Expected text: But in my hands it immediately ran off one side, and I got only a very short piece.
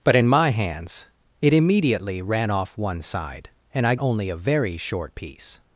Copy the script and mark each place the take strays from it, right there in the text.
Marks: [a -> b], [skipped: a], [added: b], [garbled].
But in my hands it immediately ran off one side, and I [skipped: got] only a very short piece.